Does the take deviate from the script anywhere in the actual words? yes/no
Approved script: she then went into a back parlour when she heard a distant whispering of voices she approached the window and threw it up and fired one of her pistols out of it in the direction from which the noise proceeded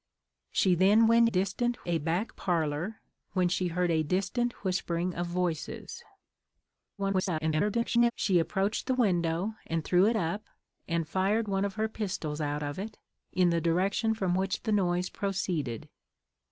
yes